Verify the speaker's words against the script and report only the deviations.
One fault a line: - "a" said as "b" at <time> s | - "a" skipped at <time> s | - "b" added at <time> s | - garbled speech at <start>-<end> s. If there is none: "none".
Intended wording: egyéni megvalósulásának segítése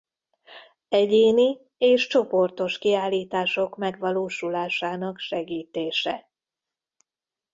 - "és csoportos kiállítások" added at 1.8 s